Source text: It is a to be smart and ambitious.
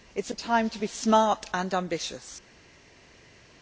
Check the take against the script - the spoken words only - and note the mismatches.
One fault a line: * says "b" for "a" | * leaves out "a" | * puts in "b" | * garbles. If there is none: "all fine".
* puts in "time"